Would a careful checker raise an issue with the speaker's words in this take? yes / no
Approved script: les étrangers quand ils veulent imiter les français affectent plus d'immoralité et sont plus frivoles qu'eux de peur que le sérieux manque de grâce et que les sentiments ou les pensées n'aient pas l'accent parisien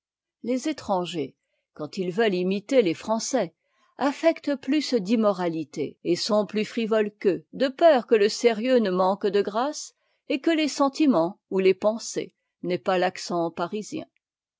yes